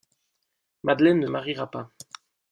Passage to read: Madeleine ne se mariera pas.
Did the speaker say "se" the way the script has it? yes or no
no